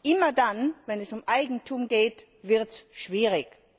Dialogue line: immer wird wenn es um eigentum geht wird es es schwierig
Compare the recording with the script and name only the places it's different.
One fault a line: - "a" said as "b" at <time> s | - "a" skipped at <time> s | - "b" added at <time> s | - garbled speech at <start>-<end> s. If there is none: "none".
- "wird" said as "dann" at 0.3 s
- "es" skipped at 2.8 s